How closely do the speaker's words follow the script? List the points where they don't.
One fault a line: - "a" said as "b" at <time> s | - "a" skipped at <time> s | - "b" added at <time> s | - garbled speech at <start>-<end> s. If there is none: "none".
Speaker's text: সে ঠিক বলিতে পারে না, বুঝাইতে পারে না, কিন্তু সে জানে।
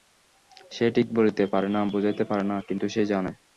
none